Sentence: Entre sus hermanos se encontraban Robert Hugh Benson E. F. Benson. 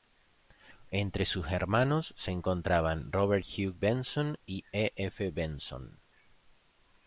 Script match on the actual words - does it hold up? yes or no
no